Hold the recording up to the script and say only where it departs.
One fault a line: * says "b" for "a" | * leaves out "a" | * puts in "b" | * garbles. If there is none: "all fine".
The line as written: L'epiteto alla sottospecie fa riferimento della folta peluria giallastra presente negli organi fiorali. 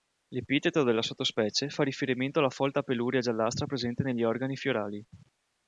* says "della" for "alla"
* says "alla" for "della"